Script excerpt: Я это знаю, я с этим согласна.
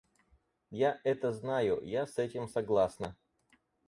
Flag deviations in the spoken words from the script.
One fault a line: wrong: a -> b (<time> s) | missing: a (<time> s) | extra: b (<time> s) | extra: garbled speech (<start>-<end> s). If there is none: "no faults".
no faults